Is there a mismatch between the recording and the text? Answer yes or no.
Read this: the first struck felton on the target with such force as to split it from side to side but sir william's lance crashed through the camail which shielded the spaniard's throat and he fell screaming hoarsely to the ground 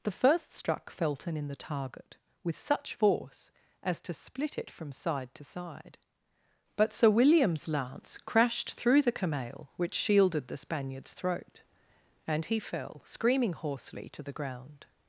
yes